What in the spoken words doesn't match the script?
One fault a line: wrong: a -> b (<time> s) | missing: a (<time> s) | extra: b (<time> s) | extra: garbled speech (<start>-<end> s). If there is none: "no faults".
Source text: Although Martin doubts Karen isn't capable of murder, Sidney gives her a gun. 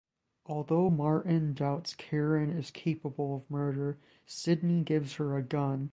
wrong: isn't -> is (2.5 s)